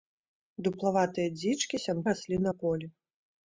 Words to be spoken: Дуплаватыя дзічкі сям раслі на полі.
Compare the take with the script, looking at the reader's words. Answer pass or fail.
pass